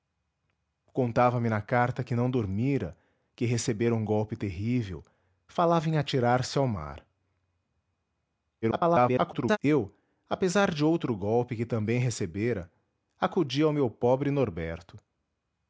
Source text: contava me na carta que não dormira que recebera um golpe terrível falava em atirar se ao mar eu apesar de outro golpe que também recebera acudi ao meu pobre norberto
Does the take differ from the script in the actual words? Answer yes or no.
yes